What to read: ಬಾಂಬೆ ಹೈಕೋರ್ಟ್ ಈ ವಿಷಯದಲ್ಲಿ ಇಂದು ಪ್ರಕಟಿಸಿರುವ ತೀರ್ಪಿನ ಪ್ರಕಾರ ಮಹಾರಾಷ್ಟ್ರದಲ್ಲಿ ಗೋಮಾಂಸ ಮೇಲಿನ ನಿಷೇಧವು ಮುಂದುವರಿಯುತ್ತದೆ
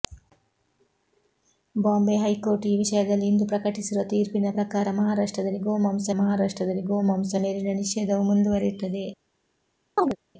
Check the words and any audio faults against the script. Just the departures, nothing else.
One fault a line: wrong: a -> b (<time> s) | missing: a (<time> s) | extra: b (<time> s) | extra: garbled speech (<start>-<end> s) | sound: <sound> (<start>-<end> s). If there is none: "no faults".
extra: ಮಹಾರಾಷ್ಟ್ರದಲ್ಲಿ ಗೋಮಾಂಸ (6.1 s)
sound: chirp (10.0-10.2 s)